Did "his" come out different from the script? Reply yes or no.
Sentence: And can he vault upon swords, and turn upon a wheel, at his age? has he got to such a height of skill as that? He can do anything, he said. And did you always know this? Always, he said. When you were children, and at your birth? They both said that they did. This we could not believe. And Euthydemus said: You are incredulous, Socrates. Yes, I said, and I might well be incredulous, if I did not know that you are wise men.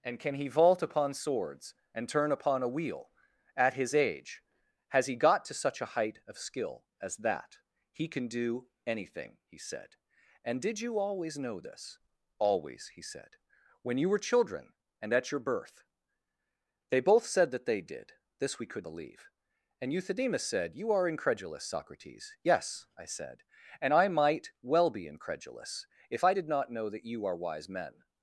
no